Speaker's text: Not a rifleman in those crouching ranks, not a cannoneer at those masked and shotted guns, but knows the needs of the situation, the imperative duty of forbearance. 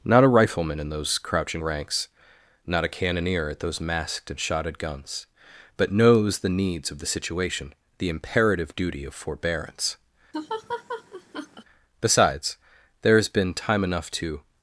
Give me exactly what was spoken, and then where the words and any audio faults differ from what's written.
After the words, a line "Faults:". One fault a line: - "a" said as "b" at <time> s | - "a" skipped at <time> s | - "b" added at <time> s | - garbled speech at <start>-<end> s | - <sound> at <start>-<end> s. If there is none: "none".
Not a rifleman in those crouching ranks, not a cannoneer at those masked and shotted guns, but knows the needs of the situation, the imperative duty of forbearance. Besides, there has been time enough to
Faults:
- laugh at 10.3-11.6 s
- "Besides there has been time enough to" added at 12.0 s